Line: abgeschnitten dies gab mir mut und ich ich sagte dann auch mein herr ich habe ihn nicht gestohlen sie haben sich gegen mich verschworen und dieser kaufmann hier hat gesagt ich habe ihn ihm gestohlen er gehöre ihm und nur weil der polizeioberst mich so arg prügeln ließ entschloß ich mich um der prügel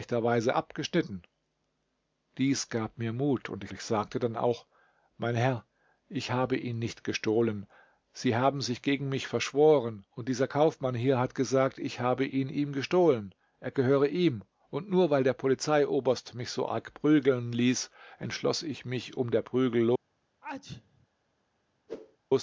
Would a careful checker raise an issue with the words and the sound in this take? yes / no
yes